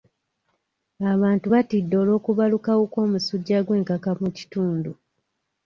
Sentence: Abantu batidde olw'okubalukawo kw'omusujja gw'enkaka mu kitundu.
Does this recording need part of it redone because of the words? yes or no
no